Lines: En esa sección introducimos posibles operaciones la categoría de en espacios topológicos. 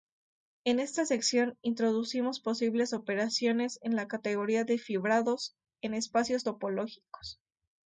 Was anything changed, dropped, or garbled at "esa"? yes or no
yes